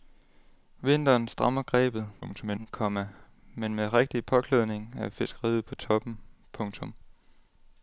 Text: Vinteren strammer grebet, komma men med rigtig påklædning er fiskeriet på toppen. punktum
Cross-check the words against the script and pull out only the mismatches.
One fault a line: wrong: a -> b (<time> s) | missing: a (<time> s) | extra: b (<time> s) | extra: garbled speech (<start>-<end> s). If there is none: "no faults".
extra: garbled speech (2.2-2.7 s)